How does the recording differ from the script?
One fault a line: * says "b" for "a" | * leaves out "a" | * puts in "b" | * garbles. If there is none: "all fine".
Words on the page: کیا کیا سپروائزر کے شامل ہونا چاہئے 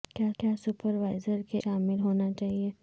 all fine